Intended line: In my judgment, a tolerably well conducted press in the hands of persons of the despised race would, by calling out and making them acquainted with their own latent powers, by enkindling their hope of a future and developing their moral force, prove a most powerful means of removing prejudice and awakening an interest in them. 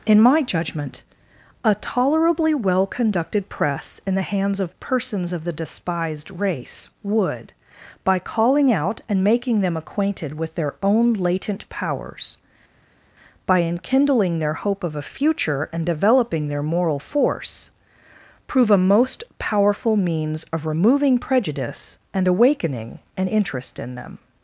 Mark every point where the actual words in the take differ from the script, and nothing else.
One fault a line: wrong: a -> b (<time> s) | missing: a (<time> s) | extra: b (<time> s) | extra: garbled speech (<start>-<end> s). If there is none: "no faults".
no faults